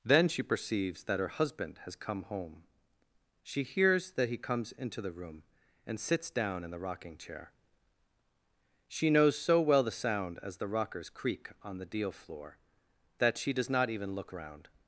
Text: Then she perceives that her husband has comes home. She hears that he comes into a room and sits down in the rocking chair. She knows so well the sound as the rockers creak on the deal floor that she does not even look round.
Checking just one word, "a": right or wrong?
wrong